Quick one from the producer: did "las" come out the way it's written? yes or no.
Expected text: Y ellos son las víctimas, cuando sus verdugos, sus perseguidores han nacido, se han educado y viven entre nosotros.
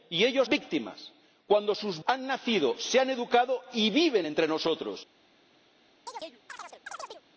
no